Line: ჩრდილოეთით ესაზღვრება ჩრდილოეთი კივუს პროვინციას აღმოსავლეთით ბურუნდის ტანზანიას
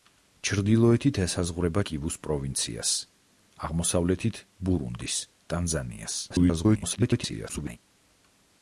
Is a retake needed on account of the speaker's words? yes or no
yes